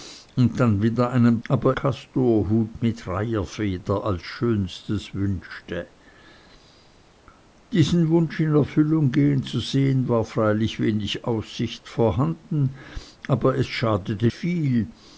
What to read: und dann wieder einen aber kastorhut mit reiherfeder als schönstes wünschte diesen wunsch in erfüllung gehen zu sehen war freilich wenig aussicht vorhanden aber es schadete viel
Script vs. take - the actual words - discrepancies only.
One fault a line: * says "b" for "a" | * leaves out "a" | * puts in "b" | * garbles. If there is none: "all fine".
all fine